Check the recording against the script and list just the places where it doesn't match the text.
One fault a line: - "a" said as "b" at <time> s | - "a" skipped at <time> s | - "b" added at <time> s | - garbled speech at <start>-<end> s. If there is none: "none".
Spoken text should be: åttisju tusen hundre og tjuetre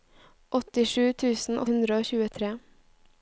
none